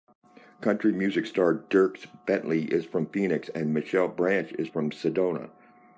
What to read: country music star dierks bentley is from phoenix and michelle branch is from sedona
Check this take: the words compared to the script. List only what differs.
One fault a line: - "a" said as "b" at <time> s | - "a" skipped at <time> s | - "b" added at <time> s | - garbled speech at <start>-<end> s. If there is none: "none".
none